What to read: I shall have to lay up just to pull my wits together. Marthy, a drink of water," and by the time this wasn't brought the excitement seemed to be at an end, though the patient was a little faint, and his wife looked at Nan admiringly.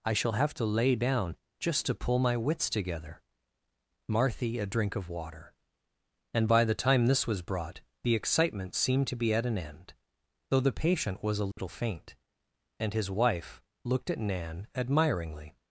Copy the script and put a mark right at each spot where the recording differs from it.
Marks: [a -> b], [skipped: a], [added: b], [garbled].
I shall have to lay [up -> down] just to pull my wits together. Marthy, a drink of water," and by the time this [wasn't -> was] brought the excitement seemed to be at an end, though the patient was a little faint, and his wife looked at Nan admiringly.